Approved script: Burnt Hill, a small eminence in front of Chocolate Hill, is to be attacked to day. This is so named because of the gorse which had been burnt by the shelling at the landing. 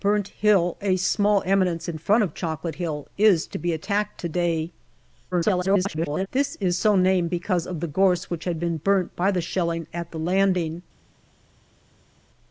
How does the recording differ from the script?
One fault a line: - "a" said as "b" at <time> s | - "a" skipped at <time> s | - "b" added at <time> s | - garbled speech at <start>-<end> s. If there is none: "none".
- garbled speech at 5.3-6.3 s